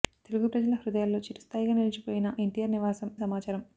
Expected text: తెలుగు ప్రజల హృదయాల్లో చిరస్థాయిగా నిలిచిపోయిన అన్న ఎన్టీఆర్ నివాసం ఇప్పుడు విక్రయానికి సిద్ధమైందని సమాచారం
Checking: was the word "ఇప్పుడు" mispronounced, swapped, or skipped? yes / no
yes